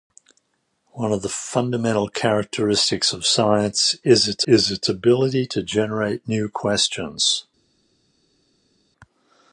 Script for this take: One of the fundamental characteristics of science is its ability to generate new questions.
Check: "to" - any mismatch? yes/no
no